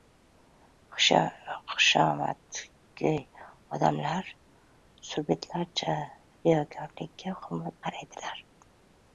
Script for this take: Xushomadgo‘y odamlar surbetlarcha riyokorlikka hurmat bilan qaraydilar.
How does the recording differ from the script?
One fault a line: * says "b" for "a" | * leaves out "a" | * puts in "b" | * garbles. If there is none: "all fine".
* leaves out "bilan"